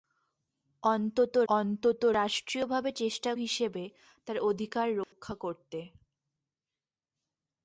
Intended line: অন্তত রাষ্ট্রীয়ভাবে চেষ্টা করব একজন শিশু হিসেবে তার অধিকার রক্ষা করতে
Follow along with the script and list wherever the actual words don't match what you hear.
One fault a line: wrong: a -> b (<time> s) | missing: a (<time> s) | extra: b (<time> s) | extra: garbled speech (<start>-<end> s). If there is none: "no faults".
extra: অন্তত (1.5 s)
missing: করব একজন শিশু (3.3 s)